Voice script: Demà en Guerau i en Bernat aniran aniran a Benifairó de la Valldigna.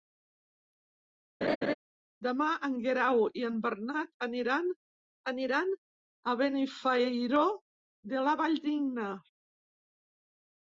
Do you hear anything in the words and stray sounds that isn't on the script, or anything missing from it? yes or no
yes